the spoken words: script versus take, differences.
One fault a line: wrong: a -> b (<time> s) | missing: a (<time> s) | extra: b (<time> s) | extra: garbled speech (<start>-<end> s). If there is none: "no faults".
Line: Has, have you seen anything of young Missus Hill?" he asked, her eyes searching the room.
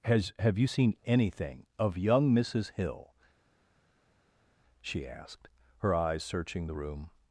wrong: he -> she (4.8 s)